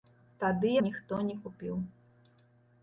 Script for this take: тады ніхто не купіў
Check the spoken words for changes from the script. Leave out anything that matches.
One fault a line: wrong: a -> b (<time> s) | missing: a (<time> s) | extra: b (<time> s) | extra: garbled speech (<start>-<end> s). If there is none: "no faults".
no faults